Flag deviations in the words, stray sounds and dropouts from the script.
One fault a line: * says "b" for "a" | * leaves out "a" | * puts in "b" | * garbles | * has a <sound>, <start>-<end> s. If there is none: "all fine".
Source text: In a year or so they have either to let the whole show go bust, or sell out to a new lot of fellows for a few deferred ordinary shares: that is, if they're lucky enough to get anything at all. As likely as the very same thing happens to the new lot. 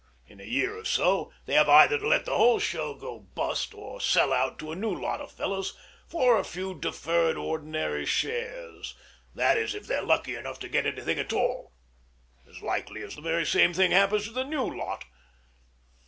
all fine